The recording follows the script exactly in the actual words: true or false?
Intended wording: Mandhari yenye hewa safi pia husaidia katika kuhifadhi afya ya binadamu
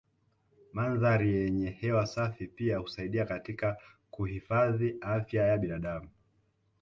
true